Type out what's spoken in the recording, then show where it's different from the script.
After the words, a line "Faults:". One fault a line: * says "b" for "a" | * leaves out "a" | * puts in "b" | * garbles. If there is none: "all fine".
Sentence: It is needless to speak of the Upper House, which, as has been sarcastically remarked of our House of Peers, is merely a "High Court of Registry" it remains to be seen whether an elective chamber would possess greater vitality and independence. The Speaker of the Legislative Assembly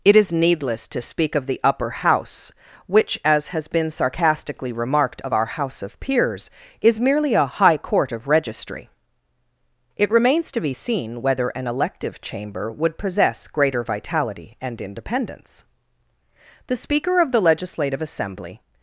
It is needless to speak of the Upper House, which, as has been sarcastically remarked of our House of Peers, is merely a "High Court of Registry" it remains to be seen whether an elective chamber would possess greater vitality and independence. The Speaker of the Legislative Assembly
Faults:
all fine